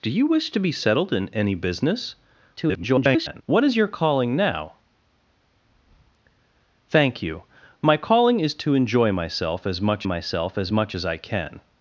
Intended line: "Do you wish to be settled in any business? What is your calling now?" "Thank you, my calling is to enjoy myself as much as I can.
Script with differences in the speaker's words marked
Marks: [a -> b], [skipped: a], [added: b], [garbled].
"Do you wish to be settled in any business? [garbled] What is your calling now?" "Thank you, my calling is to enjoy myself as much [added: myself as much] as I can.